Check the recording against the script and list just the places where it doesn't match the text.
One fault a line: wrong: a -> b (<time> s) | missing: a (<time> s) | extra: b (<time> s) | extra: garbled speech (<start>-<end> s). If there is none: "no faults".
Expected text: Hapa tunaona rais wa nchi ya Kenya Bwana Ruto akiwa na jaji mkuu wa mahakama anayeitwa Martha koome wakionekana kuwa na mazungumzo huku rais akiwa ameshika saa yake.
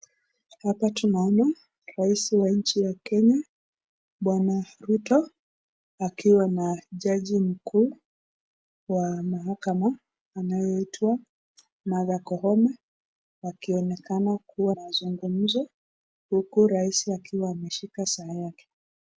missing: na (14.8 s)